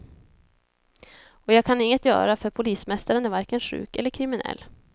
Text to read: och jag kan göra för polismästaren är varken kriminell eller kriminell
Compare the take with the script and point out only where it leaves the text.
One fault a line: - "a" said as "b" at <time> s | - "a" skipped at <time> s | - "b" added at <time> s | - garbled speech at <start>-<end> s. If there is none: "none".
- "inget" added at 1.8 s
- "kriminell" said as "sjuk" at 3.6 s